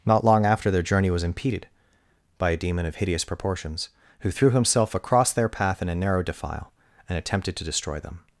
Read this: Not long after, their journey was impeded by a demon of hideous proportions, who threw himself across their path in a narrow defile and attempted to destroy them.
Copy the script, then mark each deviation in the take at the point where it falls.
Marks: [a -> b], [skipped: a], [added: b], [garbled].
Not long after, their journey was impeded by a demon of hideous proportions, who threw himself across their path in a narrow defile and attempted to destroy them.